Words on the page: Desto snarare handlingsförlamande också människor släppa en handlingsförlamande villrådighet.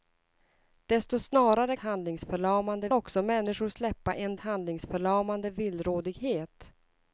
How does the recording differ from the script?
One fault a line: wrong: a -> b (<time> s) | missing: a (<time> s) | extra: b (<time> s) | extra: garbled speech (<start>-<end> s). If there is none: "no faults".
no faults